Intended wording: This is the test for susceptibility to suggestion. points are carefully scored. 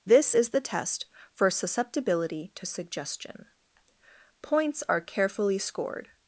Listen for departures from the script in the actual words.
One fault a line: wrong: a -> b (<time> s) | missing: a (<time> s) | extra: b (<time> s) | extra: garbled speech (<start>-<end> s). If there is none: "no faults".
no faults